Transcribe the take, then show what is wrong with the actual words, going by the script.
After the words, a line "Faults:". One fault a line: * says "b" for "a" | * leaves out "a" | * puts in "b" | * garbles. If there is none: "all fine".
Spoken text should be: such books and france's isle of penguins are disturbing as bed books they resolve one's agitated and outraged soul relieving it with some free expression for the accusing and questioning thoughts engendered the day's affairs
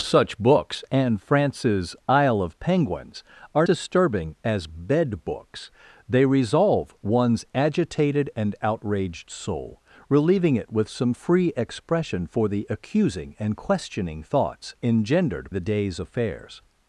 such books and france's isle of penguins are disturbing as bed books they resolve one's agitated and outraged soul relieving it with some free expression for the accusing and questioning thoughts engendered the day's affairs
Faults:
all fine